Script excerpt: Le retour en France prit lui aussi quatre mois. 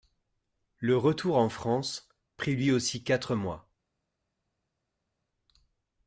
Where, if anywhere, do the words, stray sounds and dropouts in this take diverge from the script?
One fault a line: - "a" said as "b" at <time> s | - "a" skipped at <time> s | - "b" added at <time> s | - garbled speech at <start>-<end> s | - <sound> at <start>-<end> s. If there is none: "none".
none